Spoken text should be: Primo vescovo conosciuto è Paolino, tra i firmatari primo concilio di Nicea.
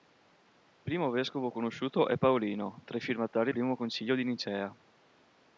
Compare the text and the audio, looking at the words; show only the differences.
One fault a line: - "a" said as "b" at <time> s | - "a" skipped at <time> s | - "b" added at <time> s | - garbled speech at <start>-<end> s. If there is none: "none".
none